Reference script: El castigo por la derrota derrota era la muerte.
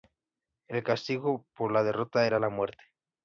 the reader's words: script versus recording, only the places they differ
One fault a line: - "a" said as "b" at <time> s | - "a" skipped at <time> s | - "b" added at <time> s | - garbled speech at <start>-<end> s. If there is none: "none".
- "derrota" skipped at 2.2 s